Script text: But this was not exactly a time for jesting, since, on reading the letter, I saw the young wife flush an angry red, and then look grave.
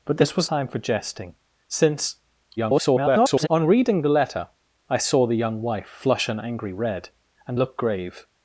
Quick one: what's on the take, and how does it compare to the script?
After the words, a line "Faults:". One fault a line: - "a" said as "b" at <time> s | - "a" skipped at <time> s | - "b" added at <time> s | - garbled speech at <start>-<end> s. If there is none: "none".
But this was time for jesting, since, [garbled] on reading the letter, I saw the young wife flush an angry red, and look grave.
Faults:
- "not exactly a" skipped at 0.5 s
- garbled speech at 2.6-3.5 s
- "then" skipped at 7.6 s